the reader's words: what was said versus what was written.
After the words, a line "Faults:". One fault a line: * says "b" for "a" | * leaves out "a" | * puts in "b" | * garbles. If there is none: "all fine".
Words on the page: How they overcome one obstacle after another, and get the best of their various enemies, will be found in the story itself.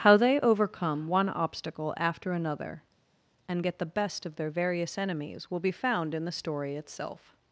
How they overcome one obstacle after another, and get the best of their various enemies, will be found in the story itself.
Faults:
all fine